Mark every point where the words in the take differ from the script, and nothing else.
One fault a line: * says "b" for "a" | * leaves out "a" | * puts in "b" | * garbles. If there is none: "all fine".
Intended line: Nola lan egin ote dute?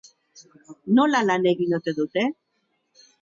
all fine